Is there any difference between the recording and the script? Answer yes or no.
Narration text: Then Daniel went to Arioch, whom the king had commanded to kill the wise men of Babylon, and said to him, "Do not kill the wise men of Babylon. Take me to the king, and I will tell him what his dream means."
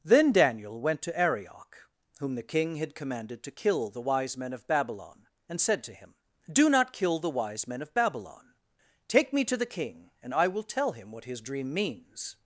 no